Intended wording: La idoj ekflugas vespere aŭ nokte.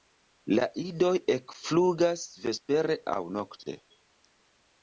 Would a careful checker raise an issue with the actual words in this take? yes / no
no